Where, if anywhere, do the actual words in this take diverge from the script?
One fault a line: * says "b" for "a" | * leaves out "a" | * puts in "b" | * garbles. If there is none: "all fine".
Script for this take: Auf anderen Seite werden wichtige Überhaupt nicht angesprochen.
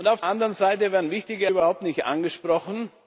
all fine